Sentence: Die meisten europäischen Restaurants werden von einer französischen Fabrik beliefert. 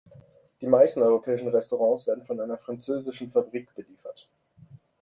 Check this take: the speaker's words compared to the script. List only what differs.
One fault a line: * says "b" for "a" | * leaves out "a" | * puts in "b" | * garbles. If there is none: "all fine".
all fine